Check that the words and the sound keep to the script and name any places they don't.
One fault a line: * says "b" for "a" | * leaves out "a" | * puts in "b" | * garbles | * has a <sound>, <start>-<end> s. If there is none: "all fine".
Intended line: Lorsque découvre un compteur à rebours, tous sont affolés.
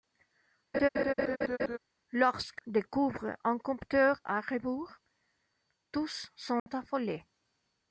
* has a laugh, 0.7-1.8 s
* has a dropout, 6.6-6.7 s